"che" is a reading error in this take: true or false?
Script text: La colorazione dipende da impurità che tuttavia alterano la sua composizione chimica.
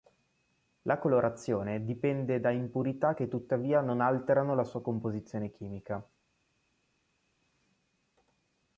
false